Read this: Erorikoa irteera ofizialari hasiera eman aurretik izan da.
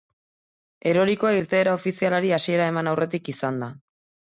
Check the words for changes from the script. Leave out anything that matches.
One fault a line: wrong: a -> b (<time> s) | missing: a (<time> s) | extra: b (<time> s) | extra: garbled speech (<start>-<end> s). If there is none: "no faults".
no faults